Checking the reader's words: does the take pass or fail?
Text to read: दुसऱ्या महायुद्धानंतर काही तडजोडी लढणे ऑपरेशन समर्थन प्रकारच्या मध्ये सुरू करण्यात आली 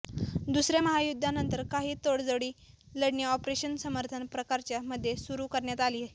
pass